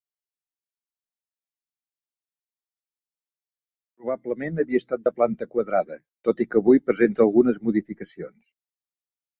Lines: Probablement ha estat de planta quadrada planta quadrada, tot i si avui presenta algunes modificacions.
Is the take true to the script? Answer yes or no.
no